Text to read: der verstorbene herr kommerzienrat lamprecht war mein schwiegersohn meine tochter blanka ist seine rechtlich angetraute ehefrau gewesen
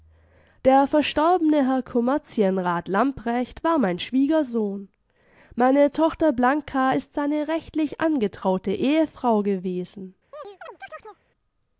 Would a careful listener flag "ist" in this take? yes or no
no